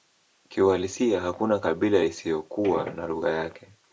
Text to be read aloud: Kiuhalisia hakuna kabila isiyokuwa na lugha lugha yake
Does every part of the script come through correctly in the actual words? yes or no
no